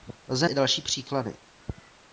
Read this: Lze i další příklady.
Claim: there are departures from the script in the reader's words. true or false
false